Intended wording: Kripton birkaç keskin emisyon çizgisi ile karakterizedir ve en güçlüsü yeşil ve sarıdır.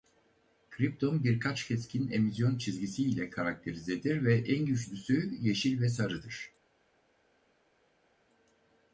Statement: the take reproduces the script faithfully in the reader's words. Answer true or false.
true